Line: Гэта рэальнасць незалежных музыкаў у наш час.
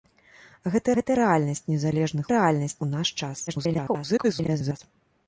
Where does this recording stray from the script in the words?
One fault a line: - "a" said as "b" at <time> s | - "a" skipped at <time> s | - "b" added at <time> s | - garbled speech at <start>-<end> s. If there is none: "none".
- "гэта" added at 1.0 s
- "музыкаў" said as "рэальнасць" at 2.3 s
- garbled speech at 3.5-4.8 s